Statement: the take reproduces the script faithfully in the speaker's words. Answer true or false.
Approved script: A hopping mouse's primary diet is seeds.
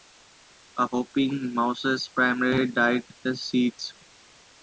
true